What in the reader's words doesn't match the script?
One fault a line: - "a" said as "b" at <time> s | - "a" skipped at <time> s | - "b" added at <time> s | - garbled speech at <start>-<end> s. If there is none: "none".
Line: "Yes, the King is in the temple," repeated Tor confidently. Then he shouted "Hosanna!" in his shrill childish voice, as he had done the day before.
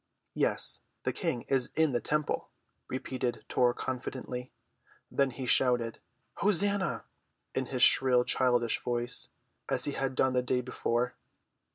none